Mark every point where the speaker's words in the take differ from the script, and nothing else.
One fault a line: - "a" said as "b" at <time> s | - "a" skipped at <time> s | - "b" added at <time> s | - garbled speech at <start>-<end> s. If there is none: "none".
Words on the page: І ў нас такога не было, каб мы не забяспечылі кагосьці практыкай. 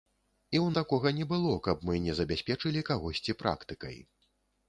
- "нас" skipped at 0.7 s